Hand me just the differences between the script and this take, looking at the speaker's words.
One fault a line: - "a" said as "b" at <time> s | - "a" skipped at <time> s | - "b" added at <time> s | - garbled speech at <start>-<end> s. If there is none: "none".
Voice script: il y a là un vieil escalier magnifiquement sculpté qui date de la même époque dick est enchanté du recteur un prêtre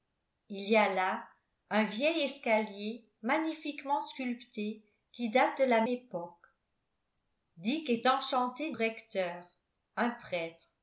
- "même" skipped at 5.8 s
- "du" skipped at 8.7 s